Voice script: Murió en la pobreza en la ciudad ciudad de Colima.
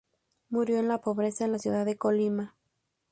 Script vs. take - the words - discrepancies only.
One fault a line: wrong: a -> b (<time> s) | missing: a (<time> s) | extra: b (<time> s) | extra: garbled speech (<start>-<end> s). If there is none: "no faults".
missing: ciudad (1.8 s)